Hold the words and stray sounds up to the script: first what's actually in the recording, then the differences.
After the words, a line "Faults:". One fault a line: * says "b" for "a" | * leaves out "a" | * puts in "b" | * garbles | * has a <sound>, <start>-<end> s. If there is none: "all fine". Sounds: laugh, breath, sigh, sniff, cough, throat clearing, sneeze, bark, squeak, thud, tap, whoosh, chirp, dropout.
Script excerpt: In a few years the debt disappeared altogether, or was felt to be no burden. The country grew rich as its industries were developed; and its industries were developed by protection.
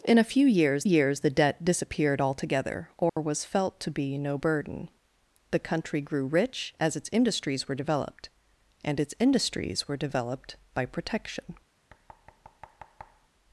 In a few years years the debt disappeared altogether, or was felt to be no burden. The country grew rich as its industries were developed; and its industries were developed by protection.
Faults:
* puts in "years"
* has a dropout, 3.1-3.2 s
* has a thud, 11.9-13.3 s